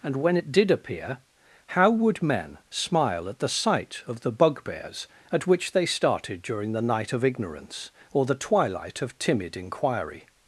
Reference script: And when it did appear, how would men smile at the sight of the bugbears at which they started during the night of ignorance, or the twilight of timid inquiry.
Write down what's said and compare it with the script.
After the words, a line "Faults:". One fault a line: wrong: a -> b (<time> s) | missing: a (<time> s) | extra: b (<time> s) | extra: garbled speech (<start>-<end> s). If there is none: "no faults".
And when it did appear, how would men smile at the sight of the bugbears at which they started during the night of ignorance, or the twilight of timid inquiry.
Faults:
no faults